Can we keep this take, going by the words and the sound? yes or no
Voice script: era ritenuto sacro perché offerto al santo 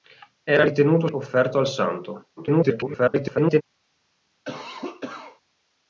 no